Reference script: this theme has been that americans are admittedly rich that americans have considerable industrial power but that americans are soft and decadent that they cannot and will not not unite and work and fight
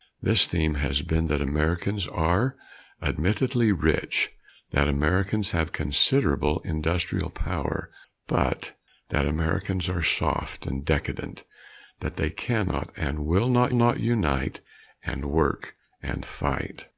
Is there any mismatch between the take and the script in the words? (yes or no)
no